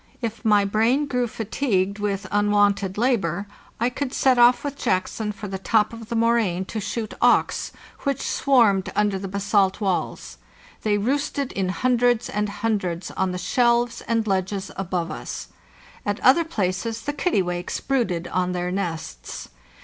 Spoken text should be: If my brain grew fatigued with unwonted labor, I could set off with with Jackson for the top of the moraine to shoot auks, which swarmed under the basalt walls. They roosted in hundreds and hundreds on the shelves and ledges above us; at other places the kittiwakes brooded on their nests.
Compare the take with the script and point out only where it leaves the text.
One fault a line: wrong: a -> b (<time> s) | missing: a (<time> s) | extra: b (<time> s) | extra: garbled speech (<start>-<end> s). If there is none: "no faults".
missing: with (4.8 s)